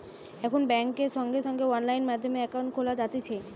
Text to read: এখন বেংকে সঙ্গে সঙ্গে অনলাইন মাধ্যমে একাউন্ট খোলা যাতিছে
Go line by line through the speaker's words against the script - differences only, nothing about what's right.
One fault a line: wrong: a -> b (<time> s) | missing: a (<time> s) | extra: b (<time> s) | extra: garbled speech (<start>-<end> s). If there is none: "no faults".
no faults